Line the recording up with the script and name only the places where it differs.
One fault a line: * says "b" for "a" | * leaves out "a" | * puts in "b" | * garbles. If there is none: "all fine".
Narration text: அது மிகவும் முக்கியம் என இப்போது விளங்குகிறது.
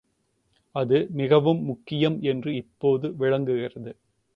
* says "என்று" for "என"